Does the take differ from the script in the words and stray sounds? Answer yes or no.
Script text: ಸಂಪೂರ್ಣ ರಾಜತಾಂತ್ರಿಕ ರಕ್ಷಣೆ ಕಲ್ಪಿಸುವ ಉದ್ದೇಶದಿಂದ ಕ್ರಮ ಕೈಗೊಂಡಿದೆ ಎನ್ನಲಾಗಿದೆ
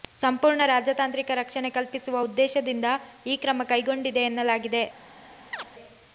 yes